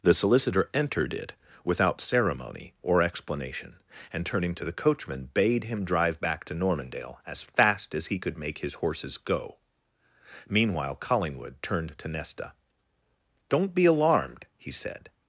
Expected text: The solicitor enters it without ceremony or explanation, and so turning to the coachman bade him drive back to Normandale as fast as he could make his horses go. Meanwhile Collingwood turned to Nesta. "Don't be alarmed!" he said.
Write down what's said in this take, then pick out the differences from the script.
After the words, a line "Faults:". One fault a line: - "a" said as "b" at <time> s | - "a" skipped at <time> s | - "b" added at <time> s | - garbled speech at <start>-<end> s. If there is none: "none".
The solicitor entered it without ceremony or explanation, and turning to the coachman bade him drive back to Normandale as fast as he could make his horses go. Meanwhile Collingwood turned to Nesta. "Don't be alarmed!" he said.
Faults:
- "enters" said as "entered" at 0.7 s
- "so" skipped at 4.2 s